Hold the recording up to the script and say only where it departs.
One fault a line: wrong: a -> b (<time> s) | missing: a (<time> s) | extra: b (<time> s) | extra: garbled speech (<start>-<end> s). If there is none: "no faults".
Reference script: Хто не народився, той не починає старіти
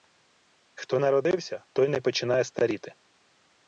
missing: не (1.0 s)